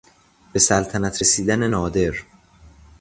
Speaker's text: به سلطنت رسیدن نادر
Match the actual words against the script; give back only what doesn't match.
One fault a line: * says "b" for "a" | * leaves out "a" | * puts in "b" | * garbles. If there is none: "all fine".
all fine